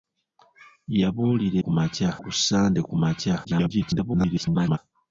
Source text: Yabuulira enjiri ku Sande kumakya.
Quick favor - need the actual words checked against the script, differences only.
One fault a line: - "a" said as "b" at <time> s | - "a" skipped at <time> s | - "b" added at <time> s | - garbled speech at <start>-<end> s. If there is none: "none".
- "enjiri" said as "kumakya" at 1.6 s
- garbled speech at 3.4-4.8 s